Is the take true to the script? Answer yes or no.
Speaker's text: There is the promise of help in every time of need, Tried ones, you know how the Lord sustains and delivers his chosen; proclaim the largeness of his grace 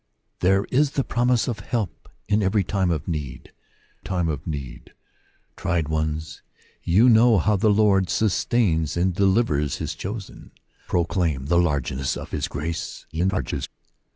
no